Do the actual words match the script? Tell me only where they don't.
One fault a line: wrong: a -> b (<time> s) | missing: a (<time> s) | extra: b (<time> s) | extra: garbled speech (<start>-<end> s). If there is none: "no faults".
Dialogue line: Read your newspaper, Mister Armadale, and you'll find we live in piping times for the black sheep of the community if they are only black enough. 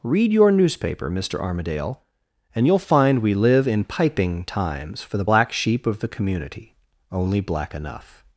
missing: if they are (6.7 s)